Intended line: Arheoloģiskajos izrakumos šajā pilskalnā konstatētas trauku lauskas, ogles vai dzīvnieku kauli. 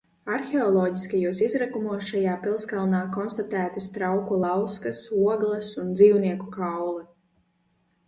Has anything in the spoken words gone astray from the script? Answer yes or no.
yes